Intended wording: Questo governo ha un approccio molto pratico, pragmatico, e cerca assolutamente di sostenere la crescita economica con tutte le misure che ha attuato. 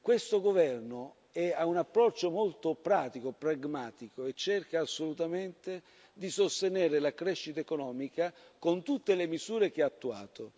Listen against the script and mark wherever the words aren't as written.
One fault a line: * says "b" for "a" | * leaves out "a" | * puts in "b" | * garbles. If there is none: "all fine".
all fine